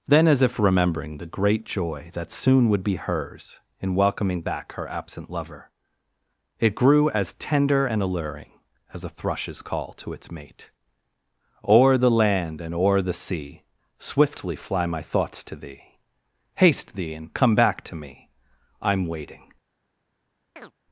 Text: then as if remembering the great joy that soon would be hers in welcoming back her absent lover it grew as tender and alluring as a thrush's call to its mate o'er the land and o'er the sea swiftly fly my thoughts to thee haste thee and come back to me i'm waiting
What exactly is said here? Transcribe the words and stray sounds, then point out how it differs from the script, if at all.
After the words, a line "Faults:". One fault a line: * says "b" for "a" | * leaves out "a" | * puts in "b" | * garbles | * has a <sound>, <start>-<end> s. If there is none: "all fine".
then as if remembering the great joy that soon would be hers in welcoming back her absent lover it grew as tender and alluring as a thrush's call to its mate o'er the land and o'er the sea swiftly fly my thoughts to thee haste thee and come back to me i'm waiting
Faults:
* has a chirp, 20.6-20.7 s